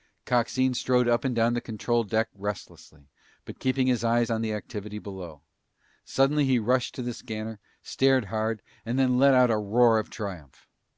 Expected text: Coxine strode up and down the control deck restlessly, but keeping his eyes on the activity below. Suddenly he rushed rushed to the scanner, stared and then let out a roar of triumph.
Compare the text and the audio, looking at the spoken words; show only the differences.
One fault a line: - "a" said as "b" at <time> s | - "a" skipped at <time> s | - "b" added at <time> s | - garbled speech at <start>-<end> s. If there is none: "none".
- "rushed" skipped at 6.9 s
- "hard" added at 8.3 s